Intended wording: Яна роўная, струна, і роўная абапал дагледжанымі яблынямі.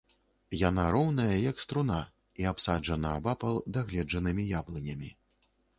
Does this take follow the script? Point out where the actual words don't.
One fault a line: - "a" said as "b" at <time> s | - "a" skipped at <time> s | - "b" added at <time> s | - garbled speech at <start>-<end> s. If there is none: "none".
- "як" added at 1.5 s
- "роўная" said as "абсаджана" at 2.5 s